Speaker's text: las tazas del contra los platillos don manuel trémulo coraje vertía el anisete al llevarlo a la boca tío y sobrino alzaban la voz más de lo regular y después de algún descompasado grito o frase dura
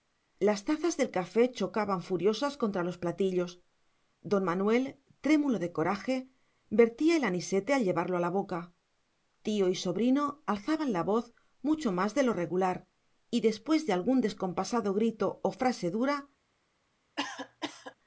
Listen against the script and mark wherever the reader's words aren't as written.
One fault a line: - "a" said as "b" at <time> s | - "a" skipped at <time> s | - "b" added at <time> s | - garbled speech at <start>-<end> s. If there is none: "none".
- "café chocaban furiosas" added at 1.1 s
- "de" added at 5.6 s
- "mucho" added at 11.6 s